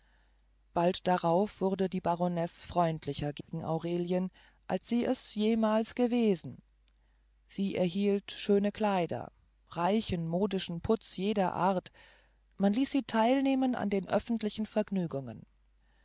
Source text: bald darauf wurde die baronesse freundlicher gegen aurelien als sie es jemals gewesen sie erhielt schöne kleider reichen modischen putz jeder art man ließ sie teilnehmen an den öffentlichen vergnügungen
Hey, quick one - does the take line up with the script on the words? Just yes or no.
yes